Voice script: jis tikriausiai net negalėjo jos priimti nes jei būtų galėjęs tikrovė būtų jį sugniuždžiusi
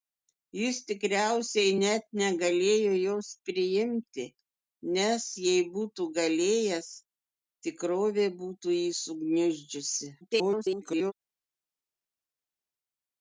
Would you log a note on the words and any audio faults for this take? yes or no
yes